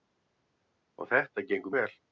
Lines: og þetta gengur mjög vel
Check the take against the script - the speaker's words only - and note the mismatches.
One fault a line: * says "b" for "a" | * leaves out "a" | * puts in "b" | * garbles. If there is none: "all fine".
* leaves out "mjög"